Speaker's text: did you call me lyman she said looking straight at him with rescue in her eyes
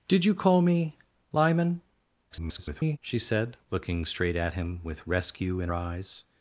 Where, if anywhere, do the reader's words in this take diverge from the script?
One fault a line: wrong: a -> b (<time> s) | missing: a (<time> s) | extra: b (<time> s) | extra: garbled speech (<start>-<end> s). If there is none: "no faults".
extra: garbled speech (2.3-3.0 s)
missing: her (5.7 s)